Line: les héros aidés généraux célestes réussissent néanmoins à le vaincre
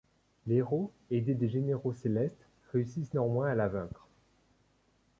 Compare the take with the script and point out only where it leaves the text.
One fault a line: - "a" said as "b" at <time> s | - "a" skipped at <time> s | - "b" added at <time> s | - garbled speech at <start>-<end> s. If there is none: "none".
- "des" added at 1.4 s
- "le" said as "la" at 3.6 s